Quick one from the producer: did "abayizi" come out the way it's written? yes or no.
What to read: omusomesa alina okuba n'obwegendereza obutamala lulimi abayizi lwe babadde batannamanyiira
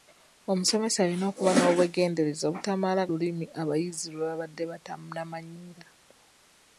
yes